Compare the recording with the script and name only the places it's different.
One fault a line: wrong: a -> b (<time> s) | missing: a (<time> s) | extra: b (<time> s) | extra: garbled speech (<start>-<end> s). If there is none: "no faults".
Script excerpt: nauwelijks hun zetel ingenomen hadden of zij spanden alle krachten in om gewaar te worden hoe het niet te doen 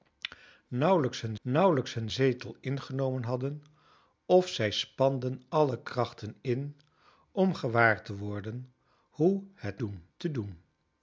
extra: nauwelijks hun (1.4 s)
wrong: niet -> doen (9.8 s)